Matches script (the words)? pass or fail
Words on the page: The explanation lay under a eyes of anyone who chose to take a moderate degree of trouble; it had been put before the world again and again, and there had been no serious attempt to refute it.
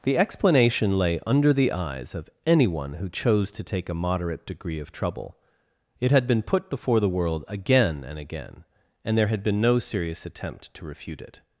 fail